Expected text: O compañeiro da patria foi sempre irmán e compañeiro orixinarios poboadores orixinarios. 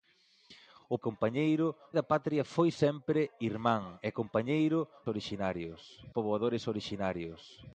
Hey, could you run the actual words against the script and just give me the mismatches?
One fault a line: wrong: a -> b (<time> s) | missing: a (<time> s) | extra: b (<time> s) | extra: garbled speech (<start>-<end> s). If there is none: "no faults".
no faults